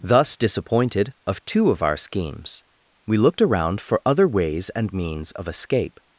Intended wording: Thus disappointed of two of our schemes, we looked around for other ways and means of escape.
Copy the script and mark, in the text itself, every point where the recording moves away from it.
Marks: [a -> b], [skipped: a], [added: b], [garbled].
Thus disappointed of two of our schemes, we looked around for other ways and means of escape.